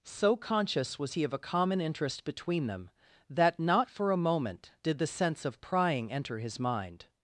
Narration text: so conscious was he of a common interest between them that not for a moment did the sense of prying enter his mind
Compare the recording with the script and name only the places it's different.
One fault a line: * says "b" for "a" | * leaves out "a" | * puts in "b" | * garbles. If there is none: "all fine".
all fine